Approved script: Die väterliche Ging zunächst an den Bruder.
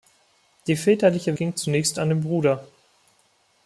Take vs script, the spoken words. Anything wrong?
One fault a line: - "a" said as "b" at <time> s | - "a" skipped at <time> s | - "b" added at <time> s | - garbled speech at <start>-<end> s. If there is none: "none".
none